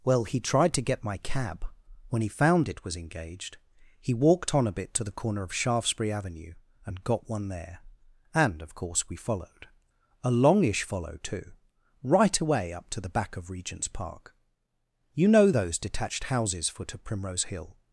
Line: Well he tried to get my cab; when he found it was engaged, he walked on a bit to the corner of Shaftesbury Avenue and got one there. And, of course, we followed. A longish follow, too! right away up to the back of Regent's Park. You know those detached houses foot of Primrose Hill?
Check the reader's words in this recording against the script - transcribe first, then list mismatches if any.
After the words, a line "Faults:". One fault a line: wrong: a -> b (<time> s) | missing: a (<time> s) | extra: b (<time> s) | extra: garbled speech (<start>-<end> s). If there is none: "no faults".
Well he tried to get my cab; when he found it was engaged, he walked on a bit to the corner of Shaftesbury Avenue and got one there. And, of course, we followed. A longish follow, too! right away up to the back of Regent's Park. You know those detached houses foot of Primrose Hill?
Faults:
no faults